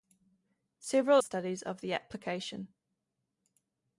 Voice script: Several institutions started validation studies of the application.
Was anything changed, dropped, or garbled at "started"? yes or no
yes